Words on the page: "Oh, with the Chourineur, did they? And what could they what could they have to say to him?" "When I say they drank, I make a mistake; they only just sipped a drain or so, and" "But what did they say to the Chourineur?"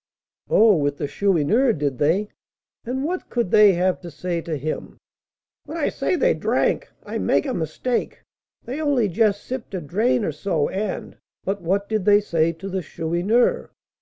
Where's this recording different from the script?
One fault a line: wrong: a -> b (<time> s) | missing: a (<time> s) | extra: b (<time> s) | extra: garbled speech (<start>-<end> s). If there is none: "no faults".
missing: what could they (3.7 s)